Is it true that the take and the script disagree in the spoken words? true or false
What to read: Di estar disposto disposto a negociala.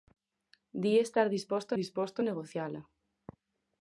false